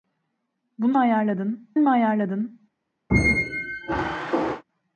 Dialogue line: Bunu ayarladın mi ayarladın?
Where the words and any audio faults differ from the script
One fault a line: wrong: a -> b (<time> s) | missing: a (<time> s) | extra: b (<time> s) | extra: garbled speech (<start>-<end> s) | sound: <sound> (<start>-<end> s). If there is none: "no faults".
sound: squeak (3.1-4.6 s)